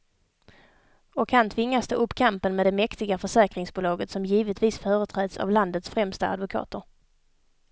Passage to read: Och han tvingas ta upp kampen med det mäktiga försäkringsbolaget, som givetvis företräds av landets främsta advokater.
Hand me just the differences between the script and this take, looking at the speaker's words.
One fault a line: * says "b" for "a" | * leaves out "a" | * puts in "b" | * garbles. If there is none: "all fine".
all fine